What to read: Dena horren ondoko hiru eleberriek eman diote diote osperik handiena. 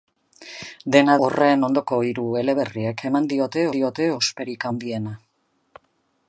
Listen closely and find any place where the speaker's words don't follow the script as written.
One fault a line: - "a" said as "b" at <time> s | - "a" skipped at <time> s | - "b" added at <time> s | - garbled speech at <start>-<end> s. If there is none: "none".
none